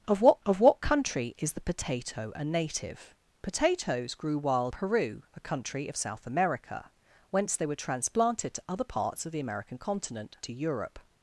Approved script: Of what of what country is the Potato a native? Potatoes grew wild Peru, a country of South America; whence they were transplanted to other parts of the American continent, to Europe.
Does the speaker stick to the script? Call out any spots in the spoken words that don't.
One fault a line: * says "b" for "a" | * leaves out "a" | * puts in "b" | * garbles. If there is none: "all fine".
all fine